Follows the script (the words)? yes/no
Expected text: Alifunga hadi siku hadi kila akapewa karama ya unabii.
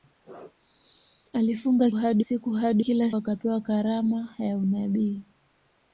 yes